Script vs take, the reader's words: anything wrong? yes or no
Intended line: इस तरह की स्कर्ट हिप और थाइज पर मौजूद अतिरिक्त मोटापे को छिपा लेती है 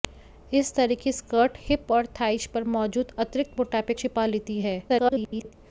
yes